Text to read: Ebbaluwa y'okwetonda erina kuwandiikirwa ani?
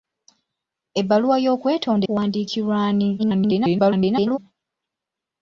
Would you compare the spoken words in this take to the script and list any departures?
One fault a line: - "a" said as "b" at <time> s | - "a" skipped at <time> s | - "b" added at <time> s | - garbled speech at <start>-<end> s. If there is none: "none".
- "erina" skipped at 2.0 s
- garbled speech at 3.2-4.4 s